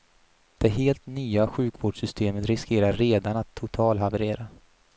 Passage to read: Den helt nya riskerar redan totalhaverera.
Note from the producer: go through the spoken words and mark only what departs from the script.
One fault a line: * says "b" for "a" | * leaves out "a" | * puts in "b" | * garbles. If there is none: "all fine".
* says "Det" for "Den"
* puts in "sjukvårdssystemet"
* puts in "att"